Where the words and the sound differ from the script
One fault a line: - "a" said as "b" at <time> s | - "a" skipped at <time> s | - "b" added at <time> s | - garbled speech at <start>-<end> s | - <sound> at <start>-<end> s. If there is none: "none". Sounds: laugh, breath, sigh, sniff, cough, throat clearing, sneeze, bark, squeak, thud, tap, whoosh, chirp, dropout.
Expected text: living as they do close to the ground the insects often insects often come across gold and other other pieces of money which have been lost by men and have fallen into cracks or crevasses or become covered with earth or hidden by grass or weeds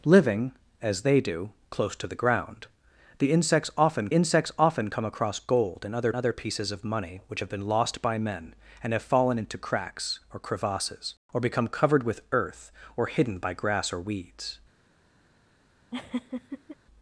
- laugh at 15.9-16.8 s